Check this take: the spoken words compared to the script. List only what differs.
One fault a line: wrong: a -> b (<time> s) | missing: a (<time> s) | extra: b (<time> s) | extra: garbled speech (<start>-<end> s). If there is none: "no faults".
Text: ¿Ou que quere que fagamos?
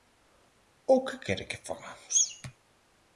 no faults